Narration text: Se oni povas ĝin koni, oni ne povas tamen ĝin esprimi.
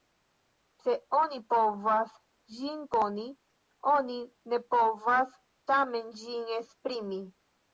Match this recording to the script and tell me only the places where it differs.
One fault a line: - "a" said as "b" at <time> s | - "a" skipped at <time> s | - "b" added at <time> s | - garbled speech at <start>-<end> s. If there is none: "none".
none